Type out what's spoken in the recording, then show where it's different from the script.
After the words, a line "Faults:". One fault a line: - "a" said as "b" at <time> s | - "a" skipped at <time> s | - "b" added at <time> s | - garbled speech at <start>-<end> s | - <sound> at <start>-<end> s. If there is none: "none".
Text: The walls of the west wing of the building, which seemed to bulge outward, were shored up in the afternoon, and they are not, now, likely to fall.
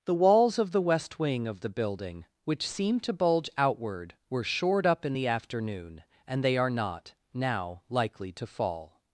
The walls of the west wing of the building, which seemed to bulge outward, were shored up in the afternoon, and they are not, now, likely to fall.
Faults:
none